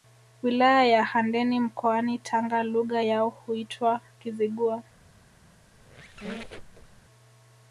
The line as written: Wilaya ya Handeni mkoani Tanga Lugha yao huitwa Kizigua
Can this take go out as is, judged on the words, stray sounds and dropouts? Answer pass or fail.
fail